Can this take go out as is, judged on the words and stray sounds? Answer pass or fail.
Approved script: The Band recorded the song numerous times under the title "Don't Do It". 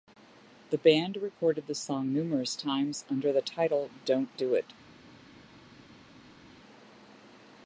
pass